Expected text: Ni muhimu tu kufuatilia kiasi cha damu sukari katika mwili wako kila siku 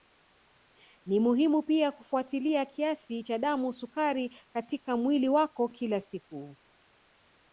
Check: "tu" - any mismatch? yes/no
yes